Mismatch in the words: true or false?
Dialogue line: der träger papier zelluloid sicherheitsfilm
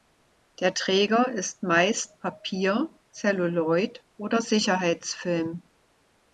true